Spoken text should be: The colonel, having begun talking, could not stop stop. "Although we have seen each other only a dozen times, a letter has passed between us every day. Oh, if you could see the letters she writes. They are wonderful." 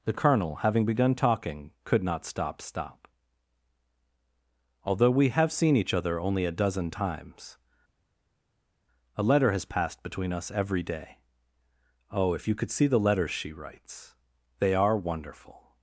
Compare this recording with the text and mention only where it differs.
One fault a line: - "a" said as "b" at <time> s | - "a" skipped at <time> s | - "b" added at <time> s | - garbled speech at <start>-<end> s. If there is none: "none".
none